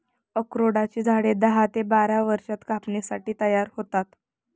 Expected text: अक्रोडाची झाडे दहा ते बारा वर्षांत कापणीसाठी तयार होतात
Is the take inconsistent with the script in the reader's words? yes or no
no